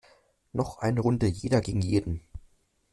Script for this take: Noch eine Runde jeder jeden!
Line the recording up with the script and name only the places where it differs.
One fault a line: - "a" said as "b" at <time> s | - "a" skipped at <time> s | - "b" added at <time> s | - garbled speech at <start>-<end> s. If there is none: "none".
- "gegen" added at 1.6 s